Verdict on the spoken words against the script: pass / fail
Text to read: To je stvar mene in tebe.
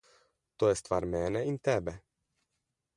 pass